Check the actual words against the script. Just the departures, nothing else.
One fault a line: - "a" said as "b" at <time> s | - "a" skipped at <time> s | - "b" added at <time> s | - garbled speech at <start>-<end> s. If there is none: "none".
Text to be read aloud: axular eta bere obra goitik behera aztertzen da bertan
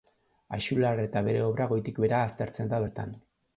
none